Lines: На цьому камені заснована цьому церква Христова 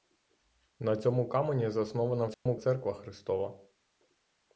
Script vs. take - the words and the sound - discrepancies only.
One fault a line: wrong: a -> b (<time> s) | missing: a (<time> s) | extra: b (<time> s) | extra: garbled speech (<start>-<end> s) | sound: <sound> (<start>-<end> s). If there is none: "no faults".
sound: dropout (2.3-2.5 s)